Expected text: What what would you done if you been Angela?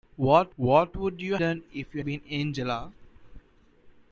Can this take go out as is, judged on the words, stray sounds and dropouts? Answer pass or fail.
pass